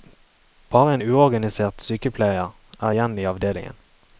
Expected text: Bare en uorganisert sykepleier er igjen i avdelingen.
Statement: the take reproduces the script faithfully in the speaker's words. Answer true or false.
true